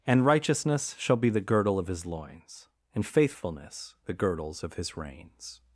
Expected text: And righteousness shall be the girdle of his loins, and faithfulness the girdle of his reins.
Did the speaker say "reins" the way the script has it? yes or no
yes